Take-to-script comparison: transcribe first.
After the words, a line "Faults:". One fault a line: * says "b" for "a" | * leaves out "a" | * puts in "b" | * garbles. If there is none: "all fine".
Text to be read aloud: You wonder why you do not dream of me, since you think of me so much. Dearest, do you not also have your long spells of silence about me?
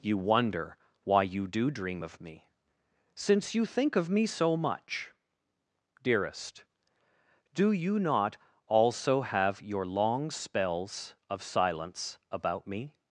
You wonder why you do dream of me, since you think of me so much. Dearest, do you not also have your long spells of silence about me?
Faults:
* leaves out "not"